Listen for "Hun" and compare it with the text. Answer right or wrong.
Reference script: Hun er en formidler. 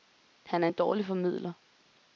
wrong